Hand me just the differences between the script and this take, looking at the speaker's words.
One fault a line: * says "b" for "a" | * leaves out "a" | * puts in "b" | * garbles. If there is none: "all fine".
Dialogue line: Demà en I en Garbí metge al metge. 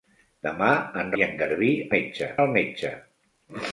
all fine